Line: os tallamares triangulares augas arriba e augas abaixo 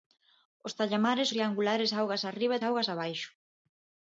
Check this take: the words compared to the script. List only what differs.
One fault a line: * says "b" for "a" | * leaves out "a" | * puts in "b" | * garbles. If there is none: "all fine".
all fine